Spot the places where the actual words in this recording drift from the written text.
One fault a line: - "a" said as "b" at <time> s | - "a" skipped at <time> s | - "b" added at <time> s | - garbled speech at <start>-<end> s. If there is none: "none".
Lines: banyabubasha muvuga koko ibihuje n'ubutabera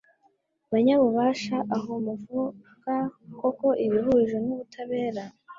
- "aho" added at 1.8 s